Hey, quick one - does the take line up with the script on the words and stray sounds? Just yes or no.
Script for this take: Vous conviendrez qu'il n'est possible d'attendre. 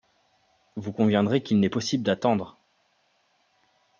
yes